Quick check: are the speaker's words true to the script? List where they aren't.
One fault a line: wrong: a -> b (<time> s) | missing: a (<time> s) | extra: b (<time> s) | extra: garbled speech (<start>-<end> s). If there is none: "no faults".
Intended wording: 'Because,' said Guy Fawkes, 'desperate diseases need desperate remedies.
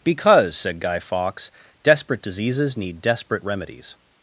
no faults